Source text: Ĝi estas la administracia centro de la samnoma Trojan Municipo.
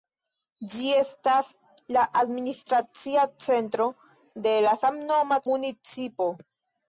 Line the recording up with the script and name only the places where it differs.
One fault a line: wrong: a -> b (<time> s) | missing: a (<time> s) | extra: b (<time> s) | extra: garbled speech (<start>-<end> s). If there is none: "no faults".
missing: Trojan (5.4 s)